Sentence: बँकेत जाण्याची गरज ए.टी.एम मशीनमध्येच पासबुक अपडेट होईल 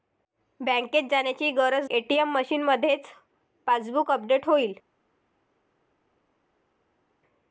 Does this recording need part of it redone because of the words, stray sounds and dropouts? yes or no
no